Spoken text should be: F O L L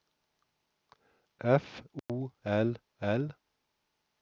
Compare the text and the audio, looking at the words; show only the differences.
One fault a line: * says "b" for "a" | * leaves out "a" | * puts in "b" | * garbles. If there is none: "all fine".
all fine